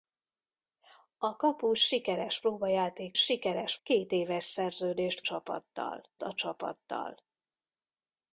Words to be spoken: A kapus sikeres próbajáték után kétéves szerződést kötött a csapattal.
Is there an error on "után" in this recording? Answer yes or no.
yes